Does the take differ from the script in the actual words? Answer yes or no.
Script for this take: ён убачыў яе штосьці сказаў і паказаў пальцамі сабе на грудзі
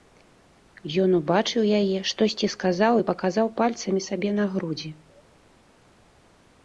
no